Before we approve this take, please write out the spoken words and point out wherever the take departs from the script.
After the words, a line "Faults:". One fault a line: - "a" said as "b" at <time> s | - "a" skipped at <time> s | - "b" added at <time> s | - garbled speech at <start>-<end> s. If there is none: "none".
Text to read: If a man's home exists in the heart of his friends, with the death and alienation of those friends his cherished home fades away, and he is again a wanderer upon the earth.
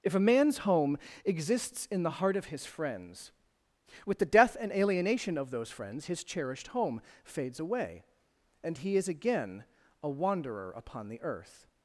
If a man's home exists in the heart of his friends, with the death and alienation of those friends his cherished home fades away, and he is again a wanderer upon the earth.
Faults:
none